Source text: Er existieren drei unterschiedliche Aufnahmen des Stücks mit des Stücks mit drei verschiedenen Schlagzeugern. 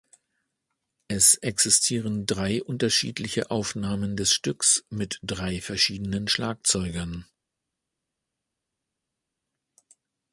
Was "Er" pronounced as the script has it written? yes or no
no